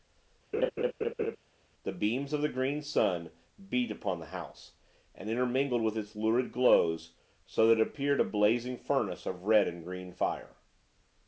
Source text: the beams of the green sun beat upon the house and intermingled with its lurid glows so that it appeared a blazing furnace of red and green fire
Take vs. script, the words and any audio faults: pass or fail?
fail